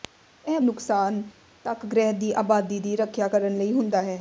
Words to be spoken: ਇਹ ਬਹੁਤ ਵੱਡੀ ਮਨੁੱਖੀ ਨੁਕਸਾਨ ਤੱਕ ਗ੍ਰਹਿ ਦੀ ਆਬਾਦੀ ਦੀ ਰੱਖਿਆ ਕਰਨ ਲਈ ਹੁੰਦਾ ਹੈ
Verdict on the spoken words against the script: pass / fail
fail